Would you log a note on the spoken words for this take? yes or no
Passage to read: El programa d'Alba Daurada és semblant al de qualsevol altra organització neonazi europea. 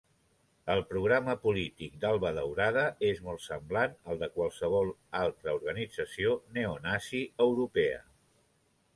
yes